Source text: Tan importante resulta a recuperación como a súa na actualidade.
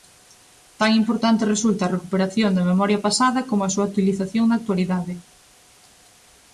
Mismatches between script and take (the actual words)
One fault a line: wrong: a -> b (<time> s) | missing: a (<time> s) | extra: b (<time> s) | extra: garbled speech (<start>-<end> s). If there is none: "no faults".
extra: da memoria pasada (2.5 s)
extra: utilización (3.9 s)